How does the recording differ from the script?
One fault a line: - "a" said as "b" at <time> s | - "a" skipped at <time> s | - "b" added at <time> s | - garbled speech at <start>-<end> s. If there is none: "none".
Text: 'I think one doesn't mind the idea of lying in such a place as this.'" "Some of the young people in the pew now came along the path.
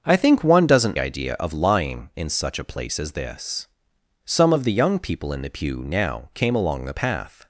- "mind the" skipped at 1.0 s